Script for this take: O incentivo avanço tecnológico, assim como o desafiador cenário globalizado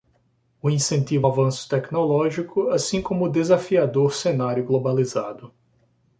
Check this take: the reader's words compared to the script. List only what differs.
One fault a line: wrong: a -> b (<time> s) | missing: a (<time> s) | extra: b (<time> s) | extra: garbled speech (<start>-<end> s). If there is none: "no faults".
no faults